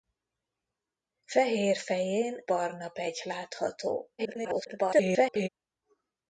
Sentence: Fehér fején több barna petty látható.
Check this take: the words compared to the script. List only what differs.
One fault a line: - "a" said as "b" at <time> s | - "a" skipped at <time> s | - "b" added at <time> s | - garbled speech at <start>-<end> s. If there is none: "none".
- "több" skipped at 2.5 s
- garbled speech at 4.2-5.5 s